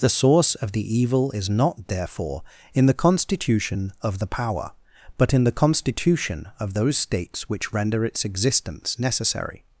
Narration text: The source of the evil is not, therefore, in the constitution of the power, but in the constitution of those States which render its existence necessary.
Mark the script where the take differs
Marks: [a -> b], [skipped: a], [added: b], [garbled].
The source of the evil is not, therefore, in the constitution of the power, but in the constitution of those States which render its existence necessary.